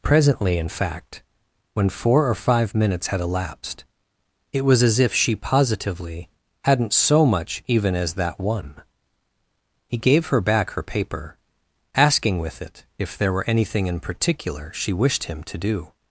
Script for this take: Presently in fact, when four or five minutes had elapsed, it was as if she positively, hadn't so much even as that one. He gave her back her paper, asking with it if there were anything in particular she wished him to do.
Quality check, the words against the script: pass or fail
pass